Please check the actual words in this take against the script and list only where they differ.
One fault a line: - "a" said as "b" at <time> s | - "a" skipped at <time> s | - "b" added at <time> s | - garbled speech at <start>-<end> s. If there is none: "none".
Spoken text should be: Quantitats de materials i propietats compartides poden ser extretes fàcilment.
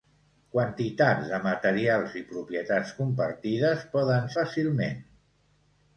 - "ser extretes" skipped at 4.3 s